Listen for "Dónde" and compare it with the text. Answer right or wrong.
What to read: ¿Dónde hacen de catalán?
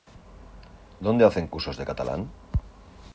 right